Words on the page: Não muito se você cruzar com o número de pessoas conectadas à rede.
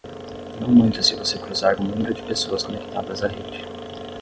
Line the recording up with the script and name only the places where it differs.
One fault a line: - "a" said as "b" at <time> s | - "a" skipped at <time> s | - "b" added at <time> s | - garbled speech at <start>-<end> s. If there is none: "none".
- "com" skipped at 1.8 s